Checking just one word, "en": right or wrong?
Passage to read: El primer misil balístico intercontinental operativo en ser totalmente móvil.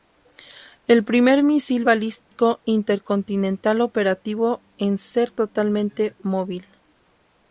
right